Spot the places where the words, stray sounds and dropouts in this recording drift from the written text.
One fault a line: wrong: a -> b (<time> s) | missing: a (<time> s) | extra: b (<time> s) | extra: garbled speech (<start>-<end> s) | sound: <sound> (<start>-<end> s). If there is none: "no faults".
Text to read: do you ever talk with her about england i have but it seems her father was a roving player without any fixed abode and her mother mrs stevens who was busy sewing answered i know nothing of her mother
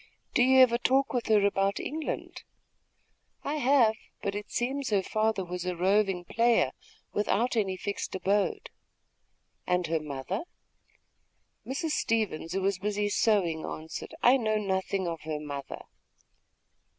no faults